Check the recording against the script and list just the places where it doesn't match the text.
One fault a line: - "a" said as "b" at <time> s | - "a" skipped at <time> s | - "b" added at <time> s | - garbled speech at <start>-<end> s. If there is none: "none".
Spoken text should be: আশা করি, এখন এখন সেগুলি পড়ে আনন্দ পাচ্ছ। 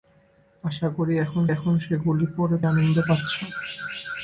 none